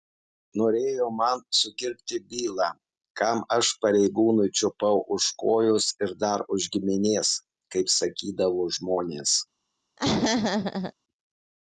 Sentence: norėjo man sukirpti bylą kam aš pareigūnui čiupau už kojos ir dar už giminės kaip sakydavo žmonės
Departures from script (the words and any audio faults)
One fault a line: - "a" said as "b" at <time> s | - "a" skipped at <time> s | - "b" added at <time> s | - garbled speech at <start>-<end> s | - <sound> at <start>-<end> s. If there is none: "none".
- laugh at 10.0-10.9 s